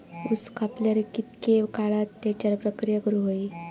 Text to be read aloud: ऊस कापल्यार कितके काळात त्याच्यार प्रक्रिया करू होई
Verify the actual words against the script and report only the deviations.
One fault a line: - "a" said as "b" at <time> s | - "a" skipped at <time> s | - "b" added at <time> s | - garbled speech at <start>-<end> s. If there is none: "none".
none